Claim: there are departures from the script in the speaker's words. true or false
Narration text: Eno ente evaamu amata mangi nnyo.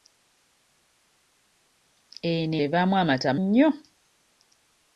true